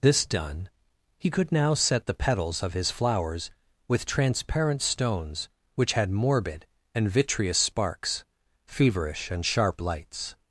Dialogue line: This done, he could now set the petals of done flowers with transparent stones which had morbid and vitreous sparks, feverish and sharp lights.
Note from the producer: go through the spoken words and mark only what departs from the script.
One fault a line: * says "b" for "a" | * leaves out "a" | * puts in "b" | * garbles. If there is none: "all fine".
* says "his" for "done"